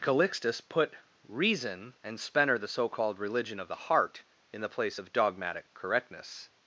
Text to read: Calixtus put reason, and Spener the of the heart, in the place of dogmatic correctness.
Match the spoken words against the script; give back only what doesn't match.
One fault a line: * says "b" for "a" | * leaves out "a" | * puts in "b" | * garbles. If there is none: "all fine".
* puts in "so called religion"